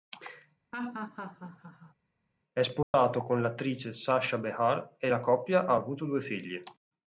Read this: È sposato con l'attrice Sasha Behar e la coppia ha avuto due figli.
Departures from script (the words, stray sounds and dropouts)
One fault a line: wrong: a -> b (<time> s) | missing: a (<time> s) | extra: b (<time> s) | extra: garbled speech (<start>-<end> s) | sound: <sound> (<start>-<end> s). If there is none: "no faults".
sound: laugh (0.7-1.9 s)
sound: dropout (2.8-2.9 s)